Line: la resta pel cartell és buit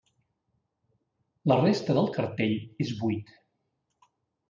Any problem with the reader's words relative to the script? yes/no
yes